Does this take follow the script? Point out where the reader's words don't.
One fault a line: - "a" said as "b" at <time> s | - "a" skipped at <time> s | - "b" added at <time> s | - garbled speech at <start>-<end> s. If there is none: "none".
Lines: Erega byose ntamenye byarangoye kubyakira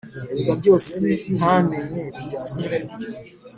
- "byarangoye" skipped at 2.0 s